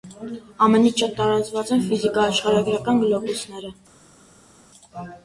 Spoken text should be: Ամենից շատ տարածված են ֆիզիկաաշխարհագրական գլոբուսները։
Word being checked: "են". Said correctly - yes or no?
yes